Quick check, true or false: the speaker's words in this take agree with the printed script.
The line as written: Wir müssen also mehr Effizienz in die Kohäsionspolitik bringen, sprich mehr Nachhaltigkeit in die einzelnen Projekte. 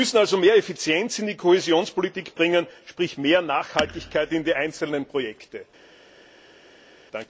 true